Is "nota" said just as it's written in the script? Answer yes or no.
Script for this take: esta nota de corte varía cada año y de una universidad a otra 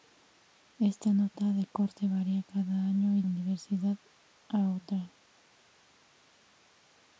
yes